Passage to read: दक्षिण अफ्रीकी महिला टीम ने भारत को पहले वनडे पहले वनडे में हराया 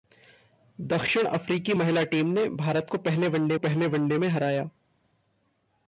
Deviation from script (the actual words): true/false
false